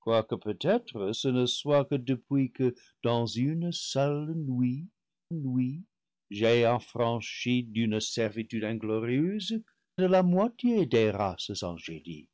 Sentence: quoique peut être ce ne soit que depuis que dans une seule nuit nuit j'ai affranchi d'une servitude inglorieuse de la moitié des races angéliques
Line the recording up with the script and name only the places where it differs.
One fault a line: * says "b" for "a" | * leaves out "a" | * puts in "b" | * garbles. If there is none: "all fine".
all fine